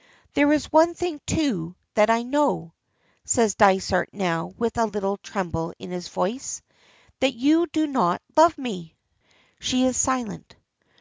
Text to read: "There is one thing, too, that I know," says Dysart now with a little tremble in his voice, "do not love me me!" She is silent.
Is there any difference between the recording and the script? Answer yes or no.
yes